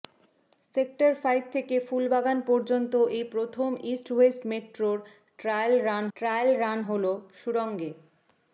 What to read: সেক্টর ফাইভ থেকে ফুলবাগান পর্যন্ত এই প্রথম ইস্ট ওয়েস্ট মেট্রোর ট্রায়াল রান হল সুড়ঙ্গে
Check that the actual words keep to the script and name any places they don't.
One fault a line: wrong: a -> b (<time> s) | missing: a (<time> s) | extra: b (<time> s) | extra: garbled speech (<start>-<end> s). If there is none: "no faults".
extra: ট্রায়াল রান (6.2 s)